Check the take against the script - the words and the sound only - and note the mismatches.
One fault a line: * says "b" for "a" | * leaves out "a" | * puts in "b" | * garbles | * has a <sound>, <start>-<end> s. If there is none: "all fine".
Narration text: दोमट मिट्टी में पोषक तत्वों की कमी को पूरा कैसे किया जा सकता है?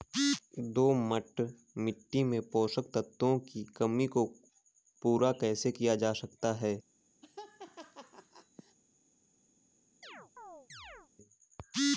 * has a laugh, 7.2-8.8 s
* has a chirp, 10.0-11.1 s